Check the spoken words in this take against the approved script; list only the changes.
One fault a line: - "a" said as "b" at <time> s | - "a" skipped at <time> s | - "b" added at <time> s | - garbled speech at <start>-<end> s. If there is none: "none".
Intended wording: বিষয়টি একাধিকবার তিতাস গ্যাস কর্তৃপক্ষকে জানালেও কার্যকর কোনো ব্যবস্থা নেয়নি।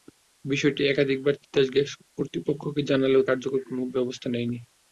none